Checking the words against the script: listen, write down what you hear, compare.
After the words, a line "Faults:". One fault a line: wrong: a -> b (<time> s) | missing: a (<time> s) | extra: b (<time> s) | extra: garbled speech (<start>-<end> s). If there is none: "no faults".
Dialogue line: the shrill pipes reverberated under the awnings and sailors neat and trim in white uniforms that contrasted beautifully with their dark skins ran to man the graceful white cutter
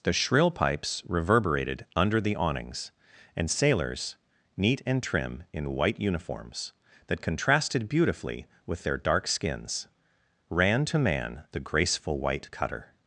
the shrill pipes reverberated under the awnings and sailors neat and trim in white uniforms that contrasted beautifully with their dark skins ran to man the graceful white cutter
Faults:
no faults